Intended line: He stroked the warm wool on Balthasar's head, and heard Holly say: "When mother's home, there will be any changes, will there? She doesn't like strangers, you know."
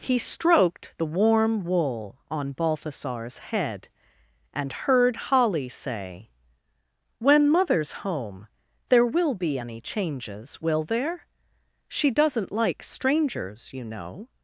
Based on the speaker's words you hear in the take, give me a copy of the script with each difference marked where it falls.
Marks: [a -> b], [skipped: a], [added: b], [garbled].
He stroked the warm wool on Balthasar's head, and heard Holly say: "When mother's home, there will be any changes, will there? She doesn't like strangers, you know."